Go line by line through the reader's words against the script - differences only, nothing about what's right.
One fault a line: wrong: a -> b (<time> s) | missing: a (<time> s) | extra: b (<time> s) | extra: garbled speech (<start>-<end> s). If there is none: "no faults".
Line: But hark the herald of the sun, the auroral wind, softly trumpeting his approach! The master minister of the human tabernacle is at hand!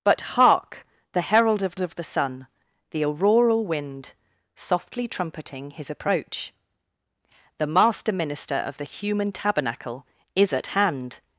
extra: of (1.8 s)